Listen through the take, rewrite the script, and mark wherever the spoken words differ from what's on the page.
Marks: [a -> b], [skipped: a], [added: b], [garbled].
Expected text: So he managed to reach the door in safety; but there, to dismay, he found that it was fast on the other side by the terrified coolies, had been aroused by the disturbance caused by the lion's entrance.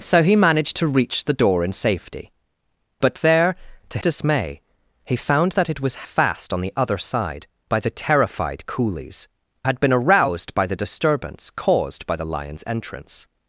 So he managed to reach the door in safety; but there, to dismay, he found that it was fast on the other side by the terrified coolies, had been aroused by the disturbance caused by the lion's entrance.